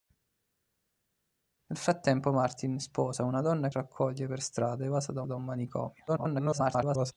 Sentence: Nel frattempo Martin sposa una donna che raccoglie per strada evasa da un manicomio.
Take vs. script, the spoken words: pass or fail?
fail